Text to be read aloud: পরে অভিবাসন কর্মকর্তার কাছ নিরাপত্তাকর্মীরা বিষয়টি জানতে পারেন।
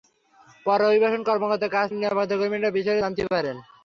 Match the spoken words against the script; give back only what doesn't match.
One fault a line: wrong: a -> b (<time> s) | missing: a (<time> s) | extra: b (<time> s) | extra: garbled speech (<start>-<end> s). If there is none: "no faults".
no faults